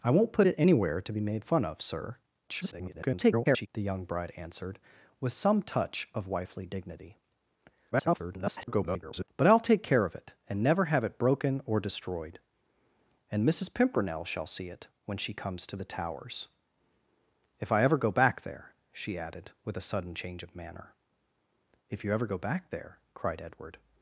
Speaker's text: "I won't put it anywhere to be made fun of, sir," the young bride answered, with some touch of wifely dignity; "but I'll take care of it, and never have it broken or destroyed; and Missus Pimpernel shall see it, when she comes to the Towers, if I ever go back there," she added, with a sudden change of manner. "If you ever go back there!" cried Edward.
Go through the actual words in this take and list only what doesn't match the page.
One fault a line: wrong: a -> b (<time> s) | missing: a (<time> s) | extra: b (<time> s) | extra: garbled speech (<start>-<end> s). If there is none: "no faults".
extra: garbled speech (2.5-3.7 s)
extra: garbled speech (7.9-9.3 s)